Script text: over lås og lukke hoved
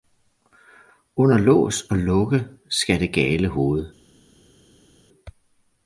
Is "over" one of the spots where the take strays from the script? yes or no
yes